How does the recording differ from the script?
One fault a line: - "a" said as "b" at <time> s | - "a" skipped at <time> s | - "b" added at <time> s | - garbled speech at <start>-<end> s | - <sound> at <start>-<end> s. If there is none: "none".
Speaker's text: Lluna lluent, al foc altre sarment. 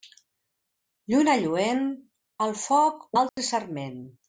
- dropout at 3.3-3.4 s